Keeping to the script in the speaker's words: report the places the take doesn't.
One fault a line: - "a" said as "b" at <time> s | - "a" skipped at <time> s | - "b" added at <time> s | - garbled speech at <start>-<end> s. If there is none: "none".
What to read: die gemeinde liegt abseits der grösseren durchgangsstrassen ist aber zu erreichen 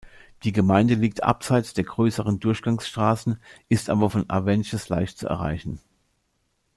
- "von avenches leicht" added at 4.1 s